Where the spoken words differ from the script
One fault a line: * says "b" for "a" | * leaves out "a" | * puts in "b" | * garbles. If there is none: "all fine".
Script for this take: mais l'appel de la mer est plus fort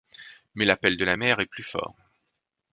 all fine